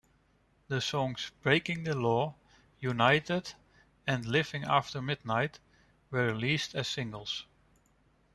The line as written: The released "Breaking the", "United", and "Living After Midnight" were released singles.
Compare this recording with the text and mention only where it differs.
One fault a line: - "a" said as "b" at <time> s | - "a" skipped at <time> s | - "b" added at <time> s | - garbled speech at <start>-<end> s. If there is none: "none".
- "released" said as "songs" at 0.8 s
- "Law" added at 1.9 s
- "as" added at 6.7 s